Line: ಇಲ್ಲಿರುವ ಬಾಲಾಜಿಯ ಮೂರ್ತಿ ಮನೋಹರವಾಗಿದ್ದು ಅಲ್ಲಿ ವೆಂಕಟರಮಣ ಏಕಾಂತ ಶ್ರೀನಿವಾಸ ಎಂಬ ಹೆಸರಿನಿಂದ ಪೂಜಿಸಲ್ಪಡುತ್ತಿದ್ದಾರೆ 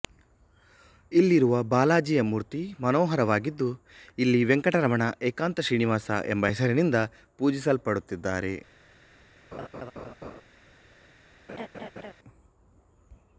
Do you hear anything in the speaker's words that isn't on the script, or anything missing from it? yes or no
yes